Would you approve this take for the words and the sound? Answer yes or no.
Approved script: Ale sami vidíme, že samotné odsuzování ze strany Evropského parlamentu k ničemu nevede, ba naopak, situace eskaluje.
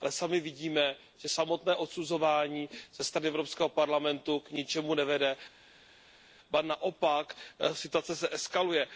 yes